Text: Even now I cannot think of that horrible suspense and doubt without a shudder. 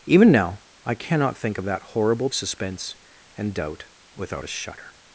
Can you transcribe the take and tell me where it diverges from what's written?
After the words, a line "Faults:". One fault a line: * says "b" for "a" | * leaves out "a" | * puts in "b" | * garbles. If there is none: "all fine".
Even now I cannot think of that horrible suspense and doubt without a shudder.
Faults:
all fine